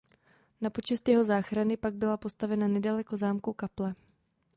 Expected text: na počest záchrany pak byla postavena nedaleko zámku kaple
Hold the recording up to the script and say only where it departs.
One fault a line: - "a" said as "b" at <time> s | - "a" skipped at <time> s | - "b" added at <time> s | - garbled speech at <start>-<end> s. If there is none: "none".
- "jeho" added at 1.1 s